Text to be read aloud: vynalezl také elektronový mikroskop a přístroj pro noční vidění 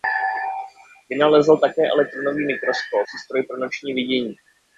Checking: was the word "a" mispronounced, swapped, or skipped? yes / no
yes